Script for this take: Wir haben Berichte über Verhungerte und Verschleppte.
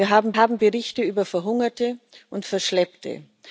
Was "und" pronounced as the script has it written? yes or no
yes